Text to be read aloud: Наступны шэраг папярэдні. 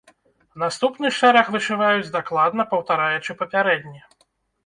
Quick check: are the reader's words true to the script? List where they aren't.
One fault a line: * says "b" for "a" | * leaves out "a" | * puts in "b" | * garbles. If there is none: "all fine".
* puts in "вышываюць дакладна паўтараючы"